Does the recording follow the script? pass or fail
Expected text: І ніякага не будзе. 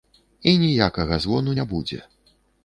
fail